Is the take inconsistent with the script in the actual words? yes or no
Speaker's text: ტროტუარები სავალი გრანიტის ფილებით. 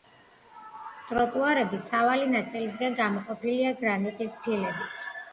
yes